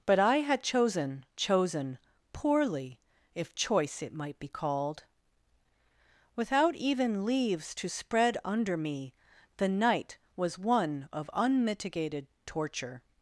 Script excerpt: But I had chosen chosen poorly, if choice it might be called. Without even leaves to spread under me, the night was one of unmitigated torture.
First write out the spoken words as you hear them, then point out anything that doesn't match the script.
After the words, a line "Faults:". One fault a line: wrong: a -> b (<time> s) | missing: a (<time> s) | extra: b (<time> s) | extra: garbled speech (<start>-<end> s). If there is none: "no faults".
But I had chosen chosen poorly, if choice it might be called. Without even leaves to spread under me, the night was one of unmitigated torture.
Faults:
no faults